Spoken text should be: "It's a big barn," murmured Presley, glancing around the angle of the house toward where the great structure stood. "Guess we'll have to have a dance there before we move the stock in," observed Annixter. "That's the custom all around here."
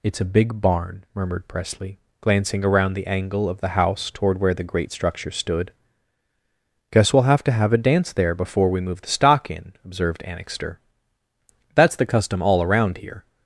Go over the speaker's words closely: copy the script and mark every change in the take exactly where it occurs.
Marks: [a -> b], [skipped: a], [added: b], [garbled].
"It's a big barn," murmured Presley, glancing around the angle of the house toward where the great structure stood. "Guess we'll have to have a dance there before we move the stock in," observed Annixter. "That's the custom all around here."